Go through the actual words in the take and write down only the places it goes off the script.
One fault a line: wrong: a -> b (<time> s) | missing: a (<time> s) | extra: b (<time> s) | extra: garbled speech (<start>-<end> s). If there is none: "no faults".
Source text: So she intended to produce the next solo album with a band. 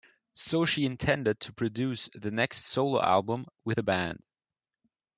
no faults